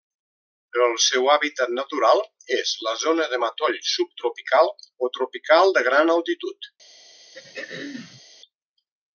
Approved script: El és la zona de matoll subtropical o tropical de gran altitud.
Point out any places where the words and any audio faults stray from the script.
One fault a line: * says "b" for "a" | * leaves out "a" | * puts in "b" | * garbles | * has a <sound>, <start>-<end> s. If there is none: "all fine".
* puts in "seu hàbitat natural"
* has a throat clearing, 7.3-8.2 s